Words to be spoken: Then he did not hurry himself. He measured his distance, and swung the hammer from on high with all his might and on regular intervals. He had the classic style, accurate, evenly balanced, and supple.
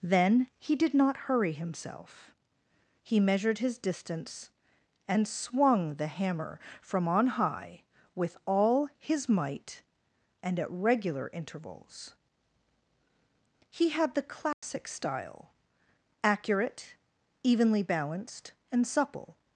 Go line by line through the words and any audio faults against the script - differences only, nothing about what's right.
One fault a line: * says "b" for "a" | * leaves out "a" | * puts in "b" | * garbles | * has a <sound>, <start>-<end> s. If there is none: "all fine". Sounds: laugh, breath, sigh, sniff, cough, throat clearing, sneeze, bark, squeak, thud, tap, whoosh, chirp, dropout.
* says "at" for "on"
* has a dropout, 14.5-14.6 s